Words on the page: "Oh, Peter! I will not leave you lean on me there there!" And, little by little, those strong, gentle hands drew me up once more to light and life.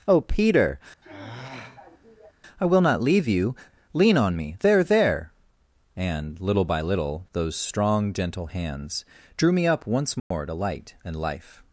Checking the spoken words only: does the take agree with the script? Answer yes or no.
yes